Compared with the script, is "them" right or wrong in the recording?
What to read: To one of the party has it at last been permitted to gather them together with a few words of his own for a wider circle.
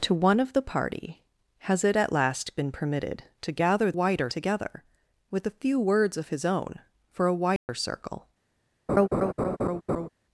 wrong